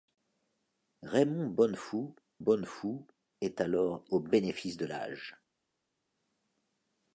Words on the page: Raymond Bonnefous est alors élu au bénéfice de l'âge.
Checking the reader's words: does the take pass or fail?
fail